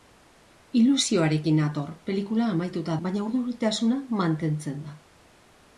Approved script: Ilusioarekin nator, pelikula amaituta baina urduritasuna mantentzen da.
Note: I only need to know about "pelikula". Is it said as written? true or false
true